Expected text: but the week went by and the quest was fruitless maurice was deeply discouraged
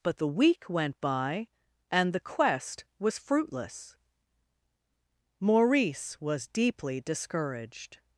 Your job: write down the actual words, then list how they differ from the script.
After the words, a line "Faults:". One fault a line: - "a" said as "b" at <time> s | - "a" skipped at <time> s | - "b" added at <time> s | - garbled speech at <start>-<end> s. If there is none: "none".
but the week went by and the quest was fruitless maurice was deeply discouraged
Faults:
none